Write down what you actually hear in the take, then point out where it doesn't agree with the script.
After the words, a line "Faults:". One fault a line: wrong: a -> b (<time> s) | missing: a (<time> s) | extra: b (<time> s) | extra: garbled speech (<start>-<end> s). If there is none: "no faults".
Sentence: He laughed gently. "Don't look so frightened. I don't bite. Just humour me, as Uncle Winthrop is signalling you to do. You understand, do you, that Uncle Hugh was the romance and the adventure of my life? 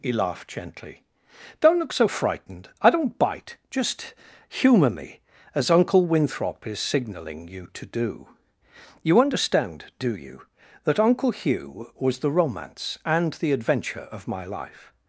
He laughed gently. "Don't look so frightened. I don't bite. Just humour me, as Uncle Winthrop is signalling you to do. You understand, do you, that Uncle Hugh was the romance and the adventure of my life?
Faults:
no faults